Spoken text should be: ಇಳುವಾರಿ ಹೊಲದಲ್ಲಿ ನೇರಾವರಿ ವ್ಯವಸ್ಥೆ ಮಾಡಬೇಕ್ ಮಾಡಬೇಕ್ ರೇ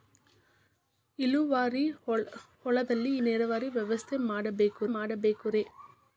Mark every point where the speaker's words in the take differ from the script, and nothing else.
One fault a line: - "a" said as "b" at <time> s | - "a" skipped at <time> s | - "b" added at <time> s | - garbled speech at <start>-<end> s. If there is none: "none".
none